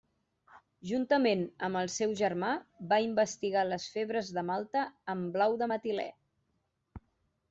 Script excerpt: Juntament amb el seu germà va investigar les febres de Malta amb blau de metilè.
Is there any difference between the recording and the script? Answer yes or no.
no